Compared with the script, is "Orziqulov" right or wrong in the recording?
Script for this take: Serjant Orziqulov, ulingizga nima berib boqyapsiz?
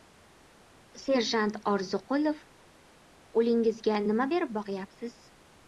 right